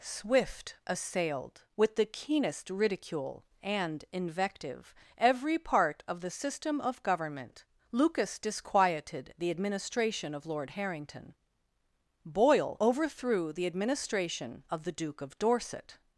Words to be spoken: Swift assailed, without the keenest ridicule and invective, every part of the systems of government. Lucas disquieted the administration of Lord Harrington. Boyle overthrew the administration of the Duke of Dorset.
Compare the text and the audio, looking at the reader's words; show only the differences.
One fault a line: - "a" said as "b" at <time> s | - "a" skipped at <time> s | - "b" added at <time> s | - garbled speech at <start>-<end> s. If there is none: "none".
- "without" said as "with" at 1.8 s
- "systems" said as "system" at 6.3 s